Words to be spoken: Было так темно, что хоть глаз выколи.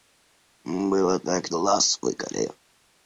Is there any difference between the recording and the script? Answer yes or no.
yes